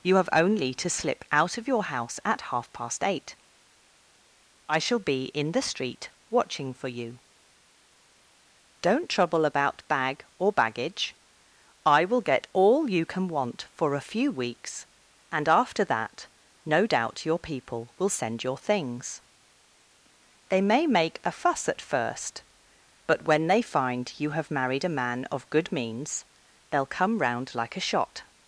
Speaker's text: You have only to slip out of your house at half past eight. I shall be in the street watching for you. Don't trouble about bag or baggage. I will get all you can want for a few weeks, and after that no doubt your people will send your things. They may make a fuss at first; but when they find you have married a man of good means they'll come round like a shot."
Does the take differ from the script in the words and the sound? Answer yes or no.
no